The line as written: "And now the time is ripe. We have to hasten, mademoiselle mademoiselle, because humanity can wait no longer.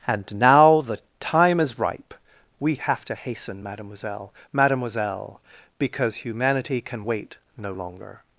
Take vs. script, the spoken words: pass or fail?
pass